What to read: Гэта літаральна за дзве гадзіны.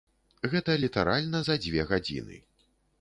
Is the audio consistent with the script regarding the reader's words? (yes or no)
yes